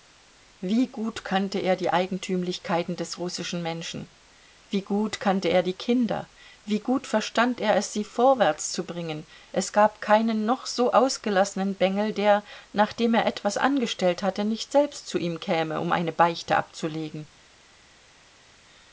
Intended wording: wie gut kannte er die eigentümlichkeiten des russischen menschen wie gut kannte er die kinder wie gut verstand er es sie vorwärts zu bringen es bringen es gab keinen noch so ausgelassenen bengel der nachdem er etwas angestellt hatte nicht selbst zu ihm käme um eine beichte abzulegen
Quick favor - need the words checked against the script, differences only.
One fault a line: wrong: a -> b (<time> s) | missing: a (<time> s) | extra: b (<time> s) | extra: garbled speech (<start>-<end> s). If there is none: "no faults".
missing: bringen es (9.7 s)